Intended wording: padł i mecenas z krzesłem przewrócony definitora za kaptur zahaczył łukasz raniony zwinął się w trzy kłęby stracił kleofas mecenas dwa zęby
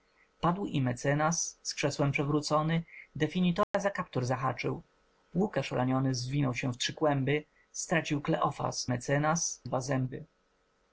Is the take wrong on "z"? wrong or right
right